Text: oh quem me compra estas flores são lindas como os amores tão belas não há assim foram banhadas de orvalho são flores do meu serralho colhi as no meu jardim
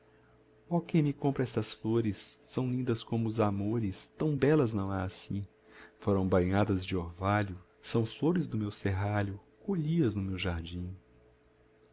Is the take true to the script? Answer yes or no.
yes